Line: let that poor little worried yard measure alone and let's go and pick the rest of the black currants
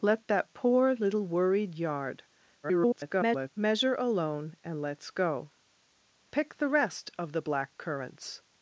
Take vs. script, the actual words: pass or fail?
fail